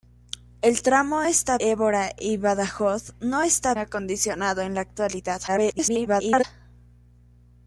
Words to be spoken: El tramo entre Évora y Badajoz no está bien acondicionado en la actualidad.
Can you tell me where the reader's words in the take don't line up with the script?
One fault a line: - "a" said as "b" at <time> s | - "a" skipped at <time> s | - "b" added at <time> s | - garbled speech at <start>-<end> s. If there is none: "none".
- "entre" said as "está" at 1.2 s
- "bien" skipped at 3.7 s
- garbled speech at 5.5-6.4 s